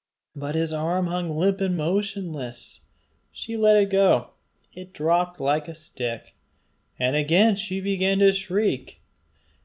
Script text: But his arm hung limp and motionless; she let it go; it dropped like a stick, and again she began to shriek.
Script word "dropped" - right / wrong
right